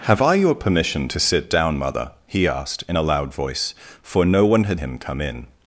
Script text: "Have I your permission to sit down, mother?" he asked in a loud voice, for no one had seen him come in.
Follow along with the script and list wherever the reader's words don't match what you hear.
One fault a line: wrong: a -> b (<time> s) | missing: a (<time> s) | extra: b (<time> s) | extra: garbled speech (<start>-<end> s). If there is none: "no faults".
missing: seen (4.8 s)